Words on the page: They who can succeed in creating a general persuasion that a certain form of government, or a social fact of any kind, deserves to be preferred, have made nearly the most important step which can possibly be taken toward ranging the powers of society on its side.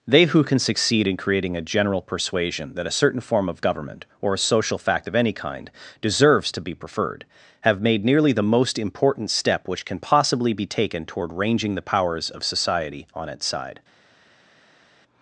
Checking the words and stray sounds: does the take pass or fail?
pass